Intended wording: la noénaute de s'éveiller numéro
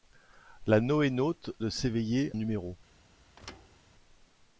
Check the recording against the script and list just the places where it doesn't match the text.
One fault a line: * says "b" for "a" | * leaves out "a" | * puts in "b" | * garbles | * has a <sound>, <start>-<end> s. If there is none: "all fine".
* has a thud, 3.4-3.8 s